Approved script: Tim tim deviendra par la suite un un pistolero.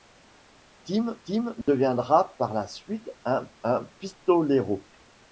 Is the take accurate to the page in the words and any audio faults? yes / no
no